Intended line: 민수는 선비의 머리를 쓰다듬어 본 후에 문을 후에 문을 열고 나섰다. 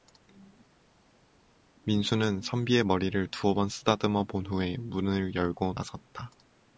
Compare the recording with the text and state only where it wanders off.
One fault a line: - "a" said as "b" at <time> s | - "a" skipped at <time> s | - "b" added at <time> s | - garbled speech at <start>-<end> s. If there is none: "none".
- "두어 번" added at 3.3 s
- "후에 문을" skipped at 5.3 s